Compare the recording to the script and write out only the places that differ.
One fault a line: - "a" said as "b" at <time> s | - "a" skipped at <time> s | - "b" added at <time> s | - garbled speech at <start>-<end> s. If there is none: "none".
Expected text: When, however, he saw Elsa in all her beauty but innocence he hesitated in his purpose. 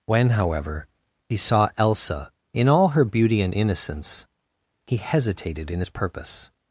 - "but" said as "and" at 3.4 s